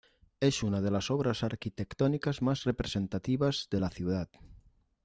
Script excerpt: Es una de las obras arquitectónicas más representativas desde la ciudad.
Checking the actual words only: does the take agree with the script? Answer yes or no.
no